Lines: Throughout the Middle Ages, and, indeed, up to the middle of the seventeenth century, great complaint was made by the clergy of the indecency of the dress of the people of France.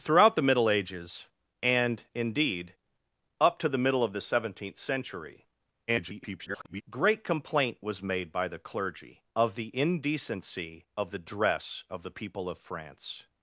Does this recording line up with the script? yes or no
no